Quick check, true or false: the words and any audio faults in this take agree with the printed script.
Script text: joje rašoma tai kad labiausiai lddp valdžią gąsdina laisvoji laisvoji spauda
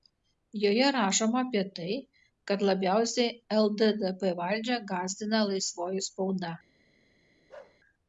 false